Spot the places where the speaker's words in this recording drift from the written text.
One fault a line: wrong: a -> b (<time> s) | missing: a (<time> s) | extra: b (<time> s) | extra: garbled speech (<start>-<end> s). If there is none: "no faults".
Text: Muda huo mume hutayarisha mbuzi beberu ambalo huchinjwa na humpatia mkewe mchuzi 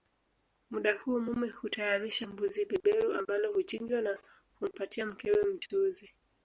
no faults